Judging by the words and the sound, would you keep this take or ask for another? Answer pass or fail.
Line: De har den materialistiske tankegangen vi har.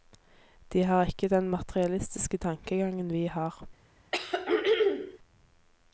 fail